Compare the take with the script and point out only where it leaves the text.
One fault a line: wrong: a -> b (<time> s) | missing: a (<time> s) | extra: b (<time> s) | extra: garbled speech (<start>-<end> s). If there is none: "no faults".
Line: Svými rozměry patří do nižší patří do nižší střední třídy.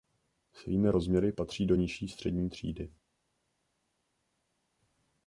missing: patří do nižší (2.1 s)